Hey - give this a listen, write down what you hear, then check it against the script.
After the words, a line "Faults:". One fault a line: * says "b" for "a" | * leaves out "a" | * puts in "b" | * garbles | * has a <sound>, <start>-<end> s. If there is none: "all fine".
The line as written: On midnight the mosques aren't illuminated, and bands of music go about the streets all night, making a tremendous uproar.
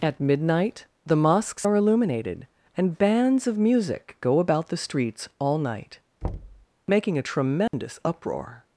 At midnight the mosques are illuminated, and bands of music go about the streets all night, making a tremendous uproar.
Faults:
* says "At" for "On"
* says "are" for "aren't"
* has a thud, 6.2-6.7 s
* has a dropout, 7.7-7.7 s